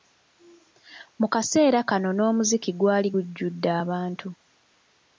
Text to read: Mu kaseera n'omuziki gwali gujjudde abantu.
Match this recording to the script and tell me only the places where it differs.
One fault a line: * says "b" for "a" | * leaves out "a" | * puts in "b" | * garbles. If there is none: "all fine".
* puts in "kano"